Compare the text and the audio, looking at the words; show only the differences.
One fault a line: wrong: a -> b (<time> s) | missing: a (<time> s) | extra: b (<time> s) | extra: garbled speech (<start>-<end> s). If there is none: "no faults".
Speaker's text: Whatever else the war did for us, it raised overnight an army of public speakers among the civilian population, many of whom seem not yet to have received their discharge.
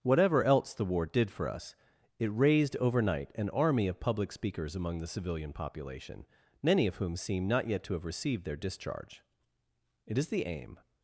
extra: It is the aim (10.1 s)